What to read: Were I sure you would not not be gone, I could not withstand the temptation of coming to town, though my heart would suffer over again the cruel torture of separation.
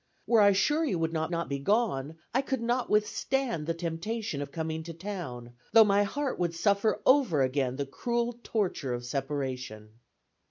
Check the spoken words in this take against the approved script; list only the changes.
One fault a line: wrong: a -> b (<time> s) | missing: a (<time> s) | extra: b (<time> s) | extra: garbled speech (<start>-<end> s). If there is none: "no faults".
no faults